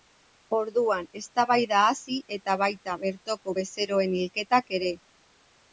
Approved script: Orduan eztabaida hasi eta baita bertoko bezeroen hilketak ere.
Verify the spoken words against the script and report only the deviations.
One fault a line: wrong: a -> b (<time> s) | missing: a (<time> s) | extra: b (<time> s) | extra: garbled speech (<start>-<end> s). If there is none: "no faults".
no faults